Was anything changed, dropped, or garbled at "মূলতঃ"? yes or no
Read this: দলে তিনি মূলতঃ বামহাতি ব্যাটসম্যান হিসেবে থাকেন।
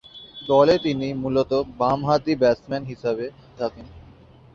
no